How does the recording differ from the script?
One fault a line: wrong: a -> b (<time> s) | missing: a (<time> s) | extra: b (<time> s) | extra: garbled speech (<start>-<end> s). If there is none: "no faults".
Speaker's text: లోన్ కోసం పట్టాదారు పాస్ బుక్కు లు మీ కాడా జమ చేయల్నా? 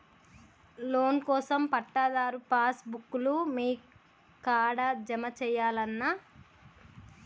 no faults